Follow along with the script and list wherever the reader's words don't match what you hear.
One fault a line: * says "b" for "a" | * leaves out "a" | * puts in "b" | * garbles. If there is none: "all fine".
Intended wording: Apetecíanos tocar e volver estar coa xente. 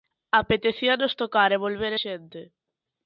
* leaves out "estar coa"